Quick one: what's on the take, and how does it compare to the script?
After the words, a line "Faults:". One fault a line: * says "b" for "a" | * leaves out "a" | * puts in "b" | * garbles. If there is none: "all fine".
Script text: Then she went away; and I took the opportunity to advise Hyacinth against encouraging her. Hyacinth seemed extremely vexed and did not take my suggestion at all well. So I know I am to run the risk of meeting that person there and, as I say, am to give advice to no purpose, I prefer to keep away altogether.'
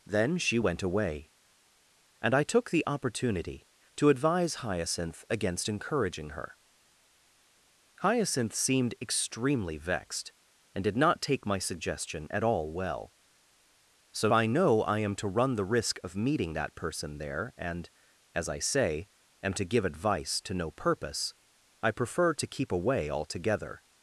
Then she went away; and I took the opportunity to advise Hyacinth against encouraging her. Hyacinth seemed extremely vexed and did not take my suggestion at all well. So I know I am to run the risk of meeting that person there and, as I say, am to give advice to no purpose, I prefer to keep away altogether.'
Faults:
all fine